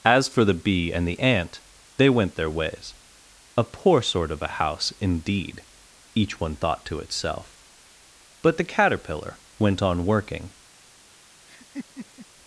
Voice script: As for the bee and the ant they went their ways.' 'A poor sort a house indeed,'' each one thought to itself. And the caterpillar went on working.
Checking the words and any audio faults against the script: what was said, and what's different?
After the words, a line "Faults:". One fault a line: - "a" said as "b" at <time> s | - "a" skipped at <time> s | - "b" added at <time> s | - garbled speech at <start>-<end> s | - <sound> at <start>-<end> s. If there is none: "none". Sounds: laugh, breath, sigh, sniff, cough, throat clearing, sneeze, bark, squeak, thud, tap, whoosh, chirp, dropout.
As for the bee and the ant they went their ways.' 'A poor sort of a house indeed,'' each one thought to itself. But the caterpillar went on working.
Faults:
- "of" added at 4.3 s
- "And" said as "But" at 8.4 s
- laugh at 11.5-12.3 s